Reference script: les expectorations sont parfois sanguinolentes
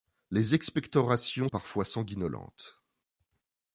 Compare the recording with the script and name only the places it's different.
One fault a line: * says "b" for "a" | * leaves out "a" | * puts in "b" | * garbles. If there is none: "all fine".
* leaves out "sont"